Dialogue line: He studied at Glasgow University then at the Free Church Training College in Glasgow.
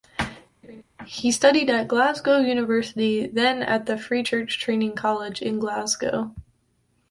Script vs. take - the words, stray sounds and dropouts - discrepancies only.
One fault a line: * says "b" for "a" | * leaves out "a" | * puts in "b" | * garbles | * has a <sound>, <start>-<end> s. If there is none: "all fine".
* has a laugh, 0.6-0.8 s